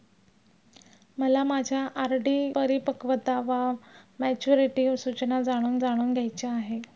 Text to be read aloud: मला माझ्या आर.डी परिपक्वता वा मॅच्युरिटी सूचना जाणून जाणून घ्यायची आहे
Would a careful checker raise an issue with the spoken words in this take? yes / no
no